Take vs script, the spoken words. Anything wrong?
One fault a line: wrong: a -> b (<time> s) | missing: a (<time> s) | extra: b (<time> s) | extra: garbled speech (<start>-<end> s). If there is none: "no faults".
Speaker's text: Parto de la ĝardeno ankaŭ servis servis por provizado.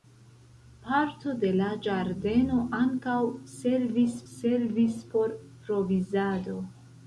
no faults